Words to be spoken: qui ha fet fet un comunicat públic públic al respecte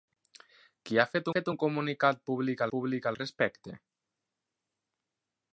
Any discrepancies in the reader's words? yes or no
no